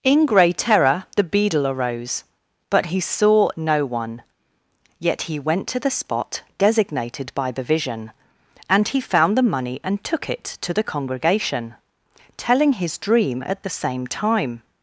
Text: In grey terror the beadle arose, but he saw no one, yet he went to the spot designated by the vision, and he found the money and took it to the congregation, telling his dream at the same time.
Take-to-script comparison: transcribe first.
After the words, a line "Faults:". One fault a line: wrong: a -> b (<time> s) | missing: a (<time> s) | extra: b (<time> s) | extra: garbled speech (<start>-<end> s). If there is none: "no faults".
In grey terror the beadle arose, but he saw no one, yet he went to the spot designated by the vision, and he found the money and took it to the congregation, telling his dream at the same time.
Faults:
no faults